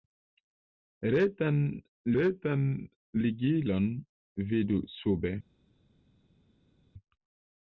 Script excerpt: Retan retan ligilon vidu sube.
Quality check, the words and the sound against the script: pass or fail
pass